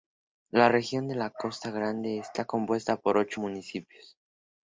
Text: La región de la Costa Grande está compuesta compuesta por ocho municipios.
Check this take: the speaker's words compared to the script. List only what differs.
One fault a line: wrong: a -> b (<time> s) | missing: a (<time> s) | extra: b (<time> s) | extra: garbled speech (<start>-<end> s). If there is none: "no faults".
missing: compuesta (3.0 s)